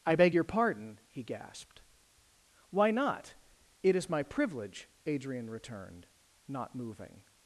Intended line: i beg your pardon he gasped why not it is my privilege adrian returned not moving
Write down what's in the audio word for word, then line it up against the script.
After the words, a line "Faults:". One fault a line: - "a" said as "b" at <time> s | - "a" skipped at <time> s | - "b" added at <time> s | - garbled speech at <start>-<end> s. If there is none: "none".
i beg your pardon he gasped why not it is my privilege adrian returned not moving
Faults:
none